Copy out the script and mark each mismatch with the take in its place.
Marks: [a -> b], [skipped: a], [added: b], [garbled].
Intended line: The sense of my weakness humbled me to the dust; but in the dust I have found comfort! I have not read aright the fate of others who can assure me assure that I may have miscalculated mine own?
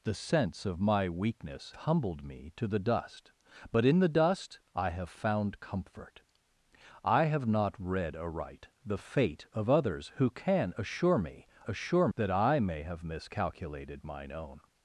The sense of my weakness humbled me to the dust; but in the dust I have found comfort! I have not read aright the fate of others who can assure me assure that I may have miscalculated mine own?